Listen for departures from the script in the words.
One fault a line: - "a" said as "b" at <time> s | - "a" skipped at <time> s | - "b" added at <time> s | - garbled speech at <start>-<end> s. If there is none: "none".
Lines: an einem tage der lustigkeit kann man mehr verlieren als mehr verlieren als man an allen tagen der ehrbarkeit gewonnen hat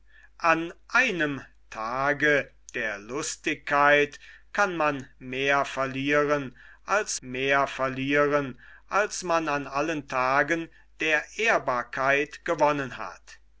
none